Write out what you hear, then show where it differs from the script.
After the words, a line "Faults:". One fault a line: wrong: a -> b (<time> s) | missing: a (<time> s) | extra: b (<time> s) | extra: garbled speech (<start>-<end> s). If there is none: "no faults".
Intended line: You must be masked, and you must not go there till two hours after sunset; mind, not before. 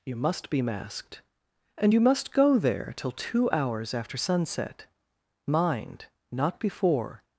You must be masked, and you must go there till two hours after sunset; mind, not before.
Faults:
missing: not (2.3 s)